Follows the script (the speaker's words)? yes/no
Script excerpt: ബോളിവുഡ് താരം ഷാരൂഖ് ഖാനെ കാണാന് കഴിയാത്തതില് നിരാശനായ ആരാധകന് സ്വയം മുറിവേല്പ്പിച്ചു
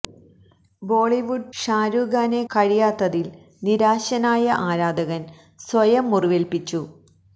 no